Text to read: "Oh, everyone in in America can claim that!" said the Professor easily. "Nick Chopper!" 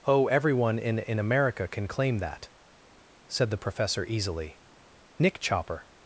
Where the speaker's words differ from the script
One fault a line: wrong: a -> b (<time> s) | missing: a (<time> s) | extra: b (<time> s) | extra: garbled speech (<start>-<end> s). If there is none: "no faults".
no faults